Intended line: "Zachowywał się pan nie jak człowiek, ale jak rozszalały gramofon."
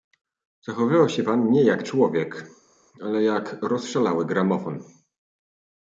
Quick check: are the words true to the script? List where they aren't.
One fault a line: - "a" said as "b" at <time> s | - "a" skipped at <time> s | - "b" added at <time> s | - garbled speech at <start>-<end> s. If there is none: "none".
none